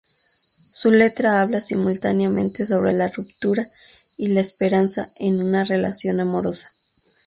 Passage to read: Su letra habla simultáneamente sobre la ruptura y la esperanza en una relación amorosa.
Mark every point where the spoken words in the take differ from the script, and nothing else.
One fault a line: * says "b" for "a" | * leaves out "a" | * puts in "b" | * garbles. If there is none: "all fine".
all fine